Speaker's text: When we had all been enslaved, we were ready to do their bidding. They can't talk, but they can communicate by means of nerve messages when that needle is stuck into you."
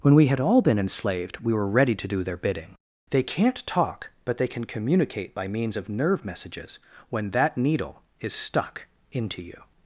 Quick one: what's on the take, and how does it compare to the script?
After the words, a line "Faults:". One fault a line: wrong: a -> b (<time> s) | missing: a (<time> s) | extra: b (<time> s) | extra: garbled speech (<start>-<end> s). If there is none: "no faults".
When we had all been enslaved, we were ready to do their bidding. They can't talk, but they can communicate by means of nerve messages when that needle is stuck into you."
Faults:
no faults